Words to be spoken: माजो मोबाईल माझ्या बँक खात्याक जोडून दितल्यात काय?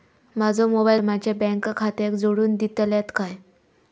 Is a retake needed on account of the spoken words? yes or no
no